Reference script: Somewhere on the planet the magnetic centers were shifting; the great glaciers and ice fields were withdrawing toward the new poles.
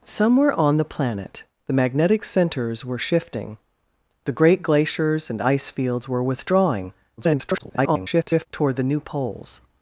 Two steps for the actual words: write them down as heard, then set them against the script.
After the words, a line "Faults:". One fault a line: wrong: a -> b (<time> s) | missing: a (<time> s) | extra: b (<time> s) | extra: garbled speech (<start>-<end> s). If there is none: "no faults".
Somewhere on the planet the magnetic centers were shifting; the great glaciers and ice fields were withdrawing [garbled] toward the new poles.
Faults:
extra: garbled speech (7.2-8.5 s)